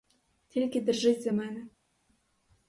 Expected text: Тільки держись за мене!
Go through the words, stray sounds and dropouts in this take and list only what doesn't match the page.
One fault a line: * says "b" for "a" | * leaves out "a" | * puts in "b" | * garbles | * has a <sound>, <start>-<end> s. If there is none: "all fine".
all fine